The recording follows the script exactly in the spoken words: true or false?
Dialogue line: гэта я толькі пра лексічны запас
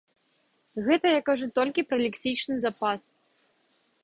false